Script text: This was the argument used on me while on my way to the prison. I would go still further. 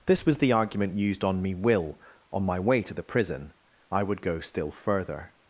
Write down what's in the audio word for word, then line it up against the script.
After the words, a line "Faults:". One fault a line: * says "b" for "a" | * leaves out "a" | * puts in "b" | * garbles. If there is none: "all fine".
This was the argument used on me will on my way to the prison. I would go still further.
Faults:
* says "will" for "while"